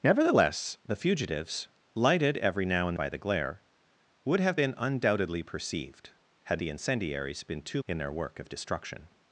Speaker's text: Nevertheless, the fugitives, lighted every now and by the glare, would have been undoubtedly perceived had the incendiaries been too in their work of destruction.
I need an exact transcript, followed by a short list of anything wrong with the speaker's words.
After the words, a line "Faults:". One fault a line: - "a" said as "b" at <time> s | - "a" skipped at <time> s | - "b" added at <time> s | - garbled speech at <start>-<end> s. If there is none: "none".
Nevertheless, the fugitives, lighted every now and by the glare, would have been undoubtedly perceived had the incendiaries been too in their work of destruction.
Faults:
none